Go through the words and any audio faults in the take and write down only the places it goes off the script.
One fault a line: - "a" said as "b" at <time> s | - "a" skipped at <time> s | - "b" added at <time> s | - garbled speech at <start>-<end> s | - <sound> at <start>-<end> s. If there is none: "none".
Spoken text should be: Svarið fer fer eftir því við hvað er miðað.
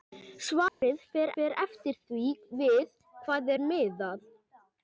- dropout at 0.7-0.8 s